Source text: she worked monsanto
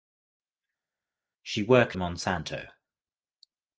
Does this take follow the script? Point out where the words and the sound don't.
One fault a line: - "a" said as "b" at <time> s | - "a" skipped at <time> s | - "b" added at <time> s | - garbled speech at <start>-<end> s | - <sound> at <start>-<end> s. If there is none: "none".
none